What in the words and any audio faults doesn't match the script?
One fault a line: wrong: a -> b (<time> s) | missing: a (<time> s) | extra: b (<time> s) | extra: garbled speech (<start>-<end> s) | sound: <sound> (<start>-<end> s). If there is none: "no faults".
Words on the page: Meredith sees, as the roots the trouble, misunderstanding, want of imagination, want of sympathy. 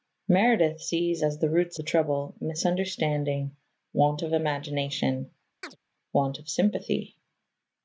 sound: chirp (5.6-5.8 s)